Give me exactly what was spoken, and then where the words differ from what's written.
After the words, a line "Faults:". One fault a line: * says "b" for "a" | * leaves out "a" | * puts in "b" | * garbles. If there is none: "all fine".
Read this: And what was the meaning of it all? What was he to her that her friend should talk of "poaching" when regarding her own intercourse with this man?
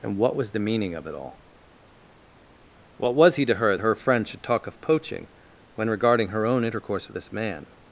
And what was the meaning of it all? What was he to her her friend should talk of "poaching" when regarding her own intercourse with this man?
Faults:
* leaves out "that"